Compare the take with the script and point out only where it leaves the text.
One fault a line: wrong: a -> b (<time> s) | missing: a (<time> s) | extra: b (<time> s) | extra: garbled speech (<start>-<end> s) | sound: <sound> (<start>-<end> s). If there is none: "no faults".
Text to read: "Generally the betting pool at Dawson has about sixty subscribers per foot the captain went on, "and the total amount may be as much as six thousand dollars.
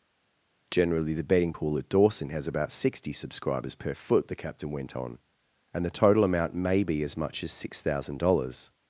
no faults